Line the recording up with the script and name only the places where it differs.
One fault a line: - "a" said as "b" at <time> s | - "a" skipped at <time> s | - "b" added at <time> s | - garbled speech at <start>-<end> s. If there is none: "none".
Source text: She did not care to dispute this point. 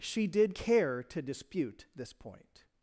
- "not" skipped at 0.6 s